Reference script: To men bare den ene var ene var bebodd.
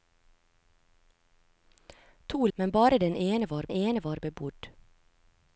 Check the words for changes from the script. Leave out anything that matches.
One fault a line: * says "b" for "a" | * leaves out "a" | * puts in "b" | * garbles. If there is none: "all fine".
all fine